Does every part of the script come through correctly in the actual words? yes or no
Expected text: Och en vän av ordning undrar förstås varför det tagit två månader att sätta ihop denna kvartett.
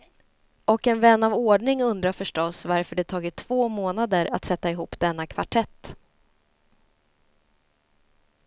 yes